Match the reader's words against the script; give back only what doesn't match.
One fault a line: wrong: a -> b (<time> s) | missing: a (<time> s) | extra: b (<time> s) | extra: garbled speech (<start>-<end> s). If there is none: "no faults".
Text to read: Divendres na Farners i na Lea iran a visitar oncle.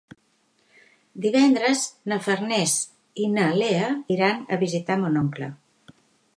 extra: mon (5.0 s)